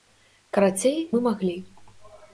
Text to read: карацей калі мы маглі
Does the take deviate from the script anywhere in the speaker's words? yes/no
yes